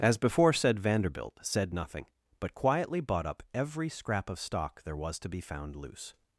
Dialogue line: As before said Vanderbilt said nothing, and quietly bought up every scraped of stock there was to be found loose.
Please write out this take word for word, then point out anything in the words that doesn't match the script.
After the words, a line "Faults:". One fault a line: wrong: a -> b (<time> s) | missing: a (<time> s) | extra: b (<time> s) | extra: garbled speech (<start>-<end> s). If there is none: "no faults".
As before said Vanderbilt said nothing, but quietly bought up every scrap of stock there was to be found loose.
Faults:
wrong: and -> but (2.4 s)
wrong: scraped -> scrap (3.9 s)